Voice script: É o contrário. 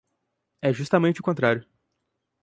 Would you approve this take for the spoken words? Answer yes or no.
no